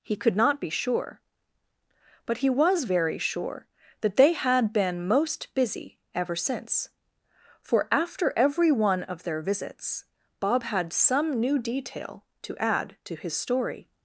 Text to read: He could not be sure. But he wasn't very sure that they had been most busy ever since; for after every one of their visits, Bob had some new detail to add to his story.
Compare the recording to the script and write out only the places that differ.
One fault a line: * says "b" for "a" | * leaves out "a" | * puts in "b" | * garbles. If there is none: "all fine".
* says "was" for "wasn't"